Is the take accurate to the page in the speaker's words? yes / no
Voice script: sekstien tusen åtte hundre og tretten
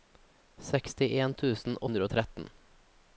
no